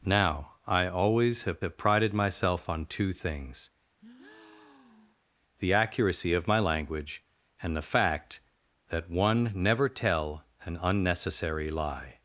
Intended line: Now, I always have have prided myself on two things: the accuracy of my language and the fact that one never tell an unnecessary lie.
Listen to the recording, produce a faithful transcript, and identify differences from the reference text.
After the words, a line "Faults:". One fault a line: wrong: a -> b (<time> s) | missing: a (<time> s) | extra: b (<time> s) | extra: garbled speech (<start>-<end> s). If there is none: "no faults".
Now, I always have have prided myself on two things: the accuracy of my language and the fact that one never tell an unnecessary lie.
Faults:
no faults